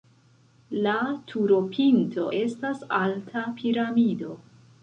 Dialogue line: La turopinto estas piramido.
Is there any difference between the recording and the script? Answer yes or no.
yes